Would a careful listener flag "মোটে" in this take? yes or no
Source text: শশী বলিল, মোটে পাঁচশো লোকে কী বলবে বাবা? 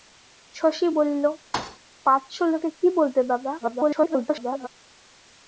yes